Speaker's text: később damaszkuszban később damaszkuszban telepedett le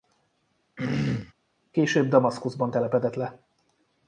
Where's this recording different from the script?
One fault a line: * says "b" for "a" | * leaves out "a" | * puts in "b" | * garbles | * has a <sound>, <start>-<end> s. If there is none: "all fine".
* has a throat clearing, 0.8-1.3 s
* leaves out "később damaszkuszban"